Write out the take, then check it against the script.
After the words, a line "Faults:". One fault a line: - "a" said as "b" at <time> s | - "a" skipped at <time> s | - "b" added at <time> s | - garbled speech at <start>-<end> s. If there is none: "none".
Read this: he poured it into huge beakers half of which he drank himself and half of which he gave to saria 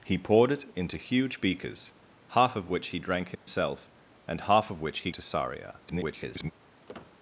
he poured it into huge beakers half of which he drank himself and half of which he to saria [garbled]
Faults:
- "gave" skipped at 5.1 s
- garbled speech at 5.9-6.5 s